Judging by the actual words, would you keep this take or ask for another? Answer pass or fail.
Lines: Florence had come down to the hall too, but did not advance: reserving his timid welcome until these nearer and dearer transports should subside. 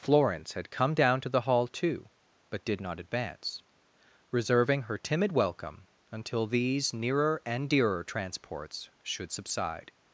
fail